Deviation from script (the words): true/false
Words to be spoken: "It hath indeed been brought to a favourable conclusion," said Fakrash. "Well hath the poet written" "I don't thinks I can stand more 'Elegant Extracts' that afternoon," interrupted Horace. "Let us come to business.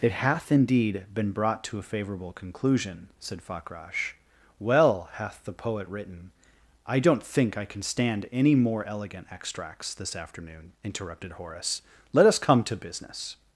true